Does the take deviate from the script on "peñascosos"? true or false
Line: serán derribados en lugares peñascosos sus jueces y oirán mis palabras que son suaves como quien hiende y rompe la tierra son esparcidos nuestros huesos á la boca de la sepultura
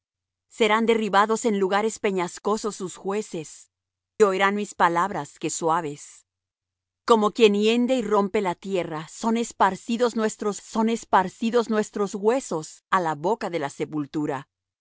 false